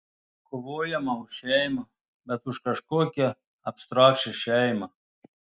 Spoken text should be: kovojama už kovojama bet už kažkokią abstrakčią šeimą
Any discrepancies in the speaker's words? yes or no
yes